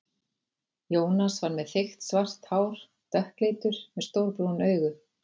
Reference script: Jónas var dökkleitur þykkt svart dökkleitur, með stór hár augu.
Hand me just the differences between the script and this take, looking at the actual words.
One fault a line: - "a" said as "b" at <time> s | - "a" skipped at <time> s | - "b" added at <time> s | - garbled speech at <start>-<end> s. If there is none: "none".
- "dökkleitur" said as "með" at 1.6 s
- "hár" added at 2.5 s
- "hár" said as "brún" at 4.4 s